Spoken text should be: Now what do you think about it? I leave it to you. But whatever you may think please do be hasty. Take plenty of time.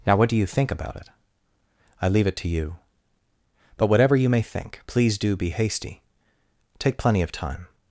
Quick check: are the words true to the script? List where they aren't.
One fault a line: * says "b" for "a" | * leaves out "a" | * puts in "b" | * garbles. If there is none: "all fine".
all fine